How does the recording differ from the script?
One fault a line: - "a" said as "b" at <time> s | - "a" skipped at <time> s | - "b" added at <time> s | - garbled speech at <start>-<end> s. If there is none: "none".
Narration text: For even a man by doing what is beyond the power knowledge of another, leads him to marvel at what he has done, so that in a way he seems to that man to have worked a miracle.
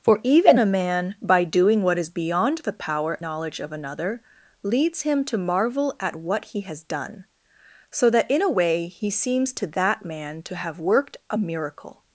none